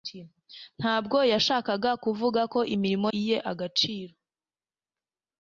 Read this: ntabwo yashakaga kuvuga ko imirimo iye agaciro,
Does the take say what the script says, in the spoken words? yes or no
yes